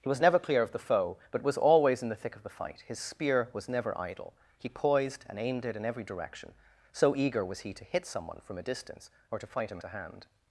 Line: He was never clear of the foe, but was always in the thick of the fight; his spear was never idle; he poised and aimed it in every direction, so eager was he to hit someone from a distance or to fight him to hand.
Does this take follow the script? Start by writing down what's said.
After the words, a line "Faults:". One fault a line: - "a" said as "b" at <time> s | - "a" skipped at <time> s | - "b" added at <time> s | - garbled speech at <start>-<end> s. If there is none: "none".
He was never clear of the foe, but was always in the thick of the fight; his spear was never idle; he poised and aimed it in every direction, so eager was he to hit someone from a distance or to fight him to hand.
Faults:
none